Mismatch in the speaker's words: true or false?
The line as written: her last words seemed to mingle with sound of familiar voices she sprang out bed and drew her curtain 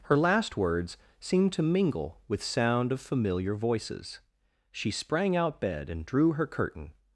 false